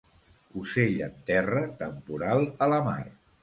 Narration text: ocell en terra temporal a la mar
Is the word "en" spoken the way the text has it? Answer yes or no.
yes